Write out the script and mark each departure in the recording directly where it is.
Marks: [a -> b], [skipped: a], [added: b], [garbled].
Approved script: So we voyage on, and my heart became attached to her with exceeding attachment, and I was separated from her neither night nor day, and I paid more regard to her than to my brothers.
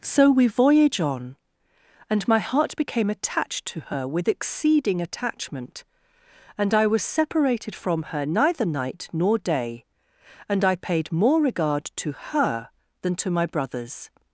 So we voyage on, and my heart became attached to her with exceeding attachment, and I was separated from her neither night nor day, and I paid more regard to her than to my brothers.